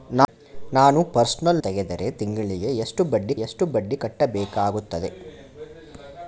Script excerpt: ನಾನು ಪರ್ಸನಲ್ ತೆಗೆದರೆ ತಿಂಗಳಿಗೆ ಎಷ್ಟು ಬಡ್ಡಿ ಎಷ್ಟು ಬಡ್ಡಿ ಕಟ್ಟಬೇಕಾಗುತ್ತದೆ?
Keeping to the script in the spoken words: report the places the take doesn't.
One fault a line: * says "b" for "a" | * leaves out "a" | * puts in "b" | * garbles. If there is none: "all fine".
all fine